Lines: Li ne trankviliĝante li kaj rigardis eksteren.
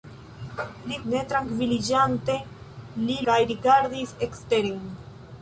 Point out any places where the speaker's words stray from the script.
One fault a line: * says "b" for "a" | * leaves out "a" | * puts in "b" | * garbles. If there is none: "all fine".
all fine